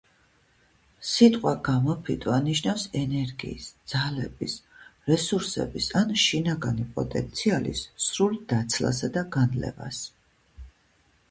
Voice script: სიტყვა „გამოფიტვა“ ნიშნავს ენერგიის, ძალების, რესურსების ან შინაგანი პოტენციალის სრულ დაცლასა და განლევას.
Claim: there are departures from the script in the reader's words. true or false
false